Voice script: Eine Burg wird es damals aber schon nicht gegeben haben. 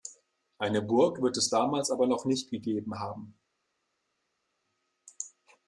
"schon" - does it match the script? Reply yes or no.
no